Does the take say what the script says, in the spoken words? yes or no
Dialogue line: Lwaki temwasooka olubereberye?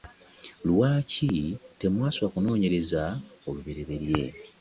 no